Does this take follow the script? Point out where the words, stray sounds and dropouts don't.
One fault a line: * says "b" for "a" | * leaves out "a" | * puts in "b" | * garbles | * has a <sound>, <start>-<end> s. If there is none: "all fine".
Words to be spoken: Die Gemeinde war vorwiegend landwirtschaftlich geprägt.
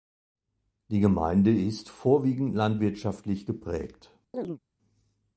* says "ist" for "war"
* has a chirp, 4.3-4.6 s